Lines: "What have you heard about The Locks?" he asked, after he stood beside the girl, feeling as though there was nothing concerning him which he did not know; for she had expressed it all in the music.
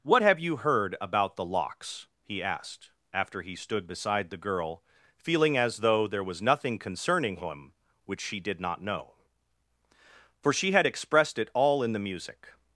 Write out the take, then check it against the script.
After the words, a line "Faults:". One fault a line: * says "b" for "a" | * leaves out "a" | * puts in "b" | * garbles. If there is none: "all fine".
"What have you heard about The Locks?" he asked, after he stood beside the girl, feeling as though there was nothing concerning him which she did not know; for she had expressed it all in the music.
Faults:
* says "she" for "he"